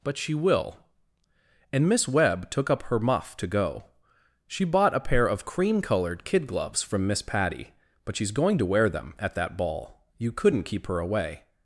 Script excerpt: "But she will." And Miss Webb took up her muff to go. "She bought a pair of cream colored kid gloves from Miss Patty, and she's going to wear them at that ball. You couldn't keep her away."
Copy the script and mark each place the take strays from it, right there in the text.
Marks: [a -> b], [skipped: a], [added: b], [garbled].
"But she will." And Miss Webb took up her muff to go. "She bought a pair of cream colored kid gloves from Miss Patty, [and -> but] she's going to wear them at that ball. You couldn't keep her away."